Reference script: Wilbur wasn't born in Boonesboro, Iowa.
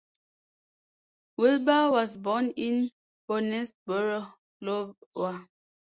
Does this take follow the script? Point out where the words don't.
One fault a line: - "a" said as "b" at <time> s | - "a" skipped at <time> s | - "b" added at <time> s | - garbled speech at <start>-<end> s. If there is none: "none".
- "wasn't" said as "was" at 1.9 s